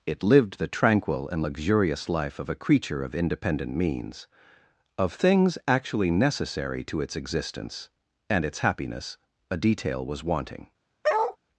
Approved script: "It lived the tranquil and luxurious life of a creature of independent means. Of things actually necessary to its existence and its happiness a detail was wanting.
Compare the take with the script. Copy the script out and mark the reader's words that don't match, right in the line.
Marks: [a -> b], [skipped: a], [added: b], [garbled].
"It lived the tranquil and luxurious life of a creature of independent means. Of things actually necessary to its existence and its happiness a detail was wanting.